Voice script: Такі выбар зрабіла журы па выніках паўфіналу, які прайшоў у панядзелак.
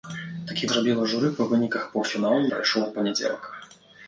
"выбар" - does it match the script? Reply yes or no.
no